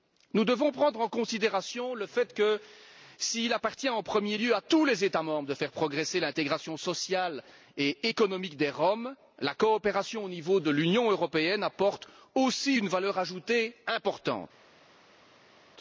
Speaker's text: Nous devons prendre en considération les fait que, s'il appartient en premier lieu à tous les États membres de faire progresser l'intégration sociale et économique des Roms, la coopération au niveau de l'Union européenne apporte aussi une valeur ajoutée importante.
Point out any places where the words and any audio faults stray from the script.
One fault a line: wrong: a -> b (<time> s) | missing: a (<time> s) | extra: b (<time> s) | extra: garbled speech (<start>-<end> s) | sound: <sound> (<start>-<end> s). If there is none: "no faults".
wrong: les -> le (1.9 s)